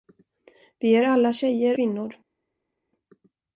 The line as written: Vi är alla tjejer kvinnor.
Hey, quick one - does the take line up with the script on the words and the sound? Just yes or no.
yes